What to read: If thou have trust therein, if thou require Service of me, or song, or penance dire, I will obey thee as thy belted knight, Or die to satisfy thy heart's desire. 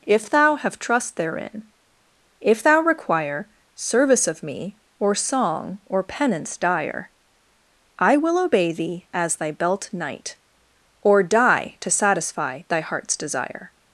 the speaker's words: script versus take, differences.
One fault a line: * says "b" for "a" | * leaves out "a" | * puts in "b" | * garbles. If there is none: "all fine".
* says "belt" for "belted"